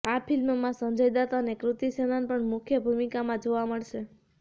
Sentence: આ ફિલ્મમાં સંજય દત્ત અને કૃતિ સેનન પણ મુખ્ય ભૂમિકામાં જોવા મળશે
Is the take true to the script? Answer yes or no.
yes